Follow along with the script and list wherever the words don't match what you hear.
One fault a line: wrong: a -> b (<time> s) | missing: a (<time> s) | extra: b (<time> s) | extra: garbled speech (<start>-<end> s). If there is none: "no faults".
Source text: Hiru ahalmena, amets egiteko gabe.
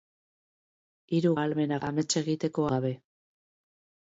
no faults